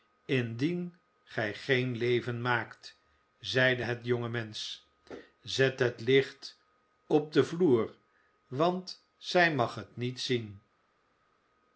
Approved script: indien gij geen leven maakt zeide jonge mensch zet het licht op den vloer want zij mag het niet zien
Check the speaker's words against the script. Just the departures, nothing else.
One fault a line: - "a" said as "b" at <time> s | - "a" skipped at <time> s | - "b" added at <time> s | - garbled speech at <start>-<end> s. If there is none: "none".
- "het" added at 3.8 s